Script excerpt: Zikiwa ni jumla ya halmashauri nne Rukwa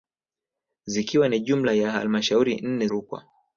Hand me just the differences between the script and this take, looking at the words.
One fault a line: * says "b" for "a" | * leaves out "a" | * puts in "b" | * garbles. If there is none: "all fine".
all fine